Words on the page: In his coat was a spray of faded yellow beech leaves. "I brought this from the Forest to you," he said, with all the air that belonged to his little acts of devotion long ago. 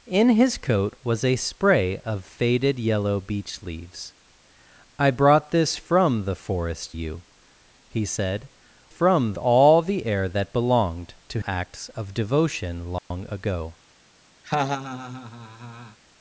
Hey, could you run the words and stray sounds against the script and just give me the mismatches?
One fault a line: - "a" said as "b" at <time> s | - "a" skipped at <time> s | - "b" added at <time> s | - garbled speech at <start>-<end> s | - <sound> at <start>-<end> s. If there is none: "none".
- "to" skipped at 7.0 s
- "with" said as "from" at 8.9 s
- "his little" skipped at 11.4 s
- dropout at 13.0-13.1 s
- laugh at 14.4-16.0 s